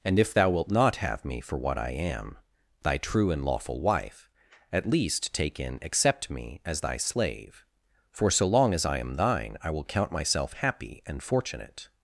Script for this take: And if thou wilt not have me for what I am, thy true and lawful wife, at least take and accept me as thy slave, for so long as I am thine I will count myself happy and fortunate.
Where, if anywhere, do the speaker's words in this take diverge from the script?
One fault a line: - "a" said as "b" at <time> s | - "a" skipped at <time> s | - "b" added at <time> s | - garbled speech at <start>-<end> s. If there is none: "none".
- "and" said as "in" at 5.6 s